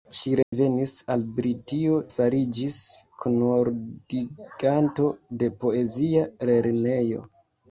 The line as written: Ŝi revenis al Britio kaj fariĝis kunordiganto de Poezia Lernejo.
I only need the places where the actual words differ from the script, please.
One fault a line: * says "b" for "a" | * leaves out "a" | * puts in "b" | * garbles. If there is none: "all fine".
* leaves out "kaj"